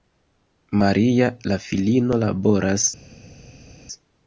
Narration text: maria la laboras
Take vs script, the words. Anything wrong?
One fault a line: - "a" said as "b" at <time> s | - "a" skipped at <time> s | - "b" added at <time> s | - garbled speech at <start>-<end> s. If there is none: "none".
- "filino" added at 1.6 s